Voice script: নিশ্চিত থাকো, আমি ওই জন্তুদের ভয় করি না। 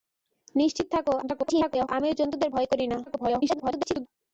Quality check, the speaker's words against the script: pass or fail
fail